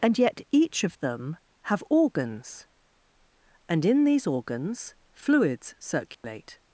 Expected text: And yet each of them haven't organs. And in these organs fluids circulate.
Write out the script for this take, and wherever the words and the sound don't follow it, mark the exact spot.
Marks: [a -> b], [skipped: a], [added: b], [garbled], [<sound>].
And yet each of them [haven't -> have] organs. And in these organs fluids circulate. [dropout]